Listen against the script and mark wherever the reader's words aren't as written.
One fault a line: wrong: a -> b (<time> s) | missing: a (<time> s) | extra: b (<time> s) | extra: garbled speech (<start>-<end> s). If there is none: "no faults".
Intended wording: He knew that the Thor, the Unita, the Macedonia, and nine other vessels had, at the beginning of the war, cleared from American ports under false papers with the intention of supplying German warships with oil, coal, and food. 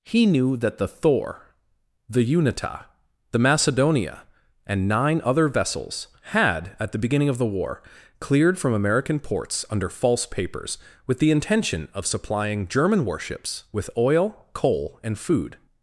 no faults